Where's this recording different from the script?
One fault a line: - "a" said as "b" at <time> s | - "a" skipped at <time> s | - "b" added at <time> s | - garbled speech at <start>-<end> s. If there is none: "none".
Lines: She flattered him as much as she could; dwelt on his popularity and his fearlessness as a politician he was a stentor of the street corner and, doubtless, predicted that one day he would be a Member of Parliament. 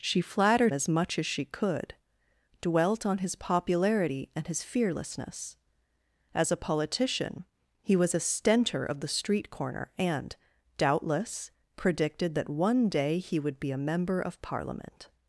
- "him" skipped at 0.7 s